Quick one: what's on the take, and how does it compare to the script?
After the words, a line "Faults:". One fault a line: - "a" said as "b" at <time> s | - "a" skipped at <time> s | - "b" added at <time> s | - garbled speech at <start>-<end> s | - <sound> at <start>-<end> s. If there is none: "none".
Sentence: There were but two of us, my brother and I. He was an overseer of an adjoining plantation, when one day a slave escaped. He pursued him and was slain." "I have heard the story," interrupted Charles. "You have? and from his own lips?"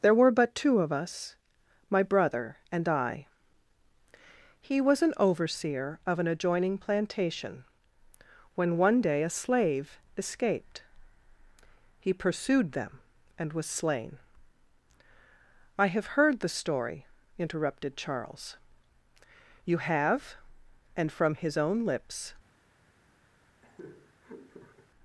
There were but two of us, my brother and I. He was an overseer of an adjoining plantation, when one day a slave escaped. He pursued them and was slain." "I have heard the story," interrupted Charles. "You have? and from his own lips?"
Faults:
- "him" said as "them" at 12.7 s
- laugh at 23.6-24.9 s